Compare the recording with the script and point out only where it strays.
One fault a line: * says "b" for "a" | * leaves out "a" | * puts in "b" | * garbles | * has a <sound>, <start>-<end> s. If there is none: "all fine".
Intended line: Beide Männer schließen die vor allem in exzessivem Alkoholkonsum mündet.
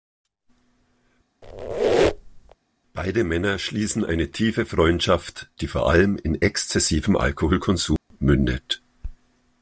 * has a squeak, 1.4-2.6 s
* puts in "eine tiefe Freundschaft"
* has a dropout, 8.0-8.1 s